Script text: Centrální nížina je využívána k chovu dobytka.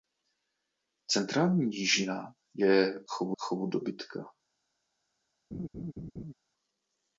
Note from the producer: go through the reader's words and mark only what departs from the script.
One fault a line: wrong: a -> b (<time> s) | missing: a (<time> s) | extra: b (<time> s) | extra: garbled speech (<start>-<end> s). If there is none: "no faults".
wrong: využívána -> chovu (3.1 s)